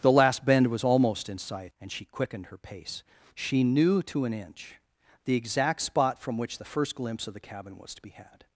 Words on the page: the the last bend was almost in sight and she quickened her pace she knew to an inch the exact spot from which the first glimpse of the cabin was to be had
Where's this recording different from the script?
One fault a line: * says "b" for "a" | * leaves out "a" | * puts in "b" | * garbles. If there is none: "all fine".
* leaves out "the"